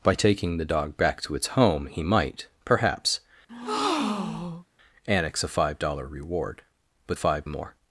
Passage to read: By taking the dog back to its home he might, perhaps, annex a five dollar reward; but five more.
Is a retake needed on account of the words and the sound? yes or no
yes